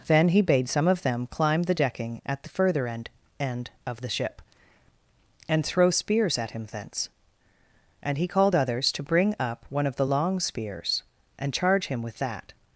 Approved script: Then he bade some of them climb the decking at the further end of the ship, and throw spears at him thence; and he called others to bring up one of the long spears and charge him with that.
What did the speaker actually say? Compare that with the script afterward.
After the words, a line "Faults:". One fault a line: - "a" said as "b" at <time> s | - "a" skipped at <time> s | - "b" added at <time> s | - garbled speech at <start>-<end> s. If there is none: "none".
Then he bade some of them climb the decking at the further end end of the ship, and throw spears at him thence; and he called others to bring up one of the long spears and charge him with that.
Faults:
- "end" added at 3.4 s